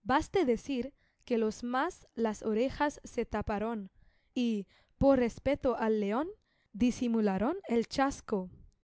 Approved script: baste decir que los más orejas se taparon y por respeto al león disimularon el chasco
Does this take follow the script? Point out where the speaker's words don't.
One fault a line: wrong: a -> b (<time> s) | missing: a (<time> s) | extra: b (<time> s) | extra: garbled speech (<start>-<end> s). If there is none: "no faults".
extra: las (2.1 s)